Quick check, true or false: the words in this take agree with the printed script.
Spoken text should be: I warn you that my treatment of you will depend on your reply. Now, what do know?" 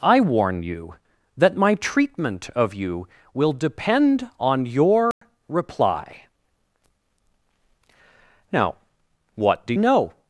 true